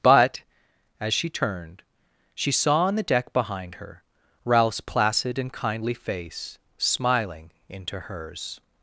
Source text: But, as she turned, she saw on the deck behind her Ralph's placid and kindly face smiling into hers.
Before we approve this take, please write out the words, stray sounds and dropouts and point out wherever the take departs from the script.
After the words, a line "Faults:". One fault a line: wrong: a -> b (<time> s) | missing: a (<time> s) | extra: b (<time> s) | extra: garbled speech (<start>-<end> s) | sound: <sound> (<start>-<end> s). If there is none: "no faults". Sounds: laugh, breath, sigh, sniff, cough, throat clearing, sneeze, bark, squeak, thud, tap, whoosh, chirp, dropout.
But, as she turned, she saw on the deck behind her Ralph's placid and kindly face smiling into hers.
Faults:
no faults